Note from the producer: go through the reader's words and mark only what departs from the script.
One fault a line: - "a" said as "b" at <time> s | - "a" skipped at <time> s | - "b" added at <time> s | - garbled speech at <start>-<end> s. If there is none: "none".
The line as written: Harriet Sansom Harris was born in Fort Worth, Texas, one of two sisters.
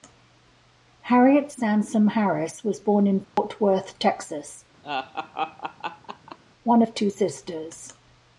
none